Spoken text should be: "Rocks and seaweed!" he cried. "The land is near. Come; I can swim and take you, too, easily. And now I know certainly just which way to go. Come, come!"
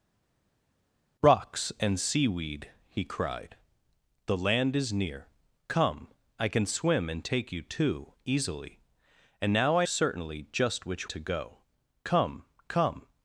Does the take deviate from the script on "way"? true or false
true